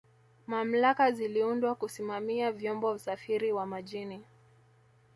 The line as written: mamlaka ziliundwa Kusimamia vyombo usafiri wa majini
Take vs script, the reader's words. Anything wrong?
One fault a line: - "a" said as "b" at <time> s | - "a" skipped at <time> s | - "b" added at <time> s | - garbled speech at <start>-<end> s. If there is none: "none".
none